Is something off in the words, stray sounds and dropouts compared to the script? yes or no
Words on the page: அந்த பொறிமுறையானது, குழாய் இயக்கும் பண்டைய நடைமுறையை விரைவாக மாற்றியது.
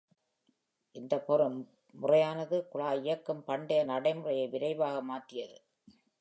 yes